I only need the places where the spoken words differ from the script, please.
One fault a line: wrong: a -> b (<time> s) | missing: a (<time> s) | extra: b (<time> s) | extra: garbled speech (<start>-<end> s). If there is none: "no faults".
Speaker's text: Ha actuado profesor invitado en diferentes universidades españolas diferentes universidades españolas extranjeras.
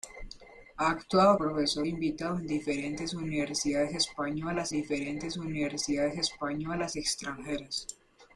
no faults